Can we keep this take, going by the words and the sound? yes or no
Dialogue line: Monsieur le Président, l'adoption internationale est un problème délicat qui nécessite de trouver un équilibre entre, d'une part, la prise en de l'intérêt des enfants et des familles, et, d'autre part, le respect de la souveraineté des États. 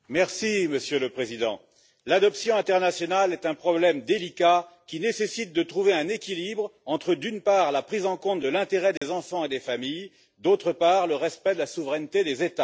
no